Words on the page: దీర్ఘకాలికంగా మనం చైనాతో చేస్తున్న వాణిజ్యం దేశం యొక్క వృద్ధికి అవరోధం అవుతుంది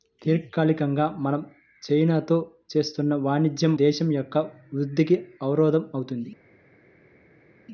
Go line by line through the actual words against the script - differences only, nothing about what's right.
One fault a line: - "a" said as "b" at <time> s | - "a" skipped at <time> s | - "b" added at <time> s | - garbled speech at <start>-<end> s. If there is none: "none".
none